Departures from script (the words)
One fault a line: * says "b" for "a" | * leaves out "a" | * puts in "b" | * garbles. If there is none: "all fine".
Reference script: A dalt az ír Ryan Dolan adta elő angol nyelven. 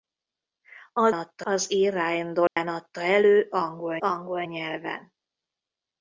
* says "adta" for "dalt"
* puts in "angol"